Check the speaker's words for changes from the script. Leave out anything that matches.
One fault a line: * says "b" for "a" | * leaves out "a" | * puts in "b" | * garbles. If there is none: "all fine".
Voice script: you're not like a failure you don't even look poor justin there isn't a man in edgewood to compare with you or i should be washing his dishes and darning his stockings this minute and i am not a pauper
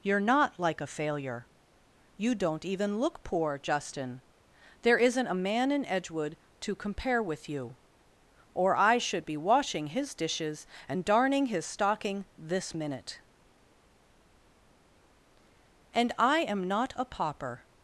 * says "stocking" for "stockings"